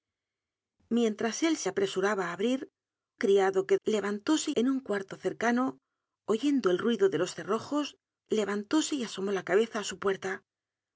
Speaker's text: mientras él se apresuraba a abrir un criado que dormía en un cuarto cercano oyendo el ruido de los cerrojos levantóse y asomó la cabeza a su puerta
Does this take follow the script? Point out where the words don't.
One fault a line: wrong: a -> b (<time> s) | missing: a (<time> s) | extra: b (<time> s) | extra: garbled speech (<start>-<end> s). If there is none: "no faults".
missing: un (2.7 s)
wrong: dormía -> levantóse (3.8 s)